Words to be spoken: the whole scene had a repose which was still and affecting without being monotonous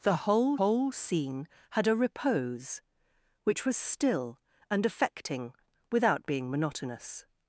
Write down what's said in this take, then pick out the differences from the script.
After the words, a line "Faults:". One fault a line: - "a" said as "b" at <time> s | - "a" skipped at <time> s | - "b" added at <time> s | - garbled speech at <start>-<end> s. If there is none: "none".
the whole whole scene had a repose which was still and affecting without being monotonous
Faults:
- "whole" added at 0.6 s